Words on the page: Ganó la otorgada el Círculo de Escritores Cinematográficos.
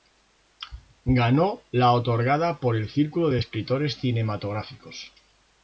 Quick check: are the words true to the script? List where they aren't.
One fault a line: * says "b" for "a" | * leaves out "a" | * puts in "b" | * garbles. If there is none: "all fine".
* puts in "por"